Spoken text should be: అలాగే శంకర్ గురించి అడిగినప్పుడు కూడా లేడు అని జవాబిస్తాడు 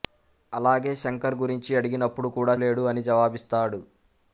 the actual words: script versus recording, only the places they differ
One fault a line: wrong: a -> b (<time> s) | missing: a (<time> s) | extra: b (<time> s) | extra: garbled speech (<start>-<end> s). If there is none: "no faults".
no faults